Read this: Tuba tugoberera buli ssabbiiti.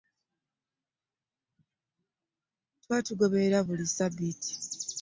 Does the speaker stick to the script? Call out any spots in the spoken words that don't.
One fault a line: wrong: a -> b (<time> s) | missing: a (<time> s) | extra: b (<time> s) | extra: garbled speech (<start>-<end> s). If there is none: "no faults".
no faults